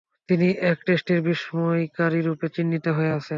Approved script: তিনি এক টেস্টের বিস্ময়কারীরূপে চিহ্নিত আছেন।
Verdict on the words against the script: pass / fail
fail